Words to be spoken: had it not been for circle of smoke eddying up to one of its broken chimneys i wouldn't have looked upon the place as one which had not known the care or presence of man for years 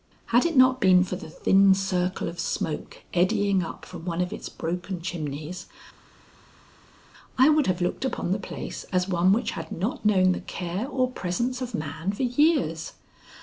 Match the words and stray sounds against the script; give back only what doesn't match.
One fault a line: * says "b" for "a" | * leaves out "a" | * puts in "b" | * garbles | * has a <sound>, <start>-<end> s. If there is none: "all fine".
* puts in "the thin"
* says "from" for "to"
* says "would" for "wouldn't"